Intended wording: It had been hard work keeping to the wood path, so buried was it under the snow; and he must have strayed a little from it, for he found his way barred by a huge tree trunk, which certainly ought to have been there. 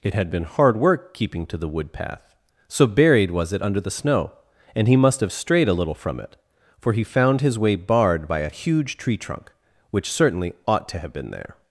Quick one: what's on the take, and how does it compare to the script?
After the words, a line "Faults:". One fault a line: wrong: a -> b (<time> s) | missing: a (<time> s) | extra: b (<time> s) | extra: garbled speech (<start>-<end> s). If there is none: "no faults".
It had been hard work keeping to the wood path, so buried was it under the snow; and he must have strayed a little from it, for he found his way barred by a huge tree trunk, which certainly ought to have been there.
Faults:
no faults